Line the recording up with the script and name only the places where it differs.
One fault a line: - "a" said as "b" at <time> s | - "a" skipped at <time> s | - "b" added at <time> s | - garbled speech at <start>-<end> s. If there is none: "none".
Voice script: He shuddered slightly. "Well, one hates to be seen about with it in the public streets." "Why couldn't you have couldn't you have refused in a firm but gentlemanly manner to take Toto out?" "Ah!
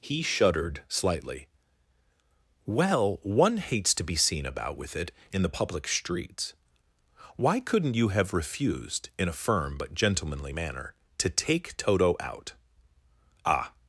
- "couldn't you have" skipped at 8.3 s